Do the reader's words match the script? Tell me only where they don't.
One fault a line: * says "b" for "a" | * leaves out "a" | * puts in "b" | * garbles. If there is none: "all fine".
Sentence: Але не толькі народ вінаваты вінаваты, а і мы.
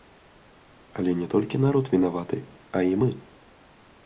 * leaves out "вінаваты"